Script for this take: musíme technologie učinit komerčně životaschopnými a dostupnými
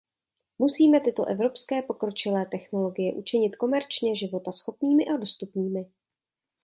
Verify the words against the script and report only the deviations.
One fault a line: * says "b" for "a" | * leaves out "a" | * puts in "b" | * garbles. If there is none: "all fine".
* puts in "tyto evropské pokročilé"